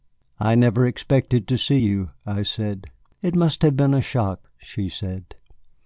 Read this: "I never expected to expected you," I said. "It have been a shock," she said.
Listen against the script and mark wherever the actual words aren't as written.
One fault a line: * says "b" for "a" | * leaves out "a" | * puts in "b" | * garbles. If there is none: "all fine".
* says "see" for "expected"
* puts in "must"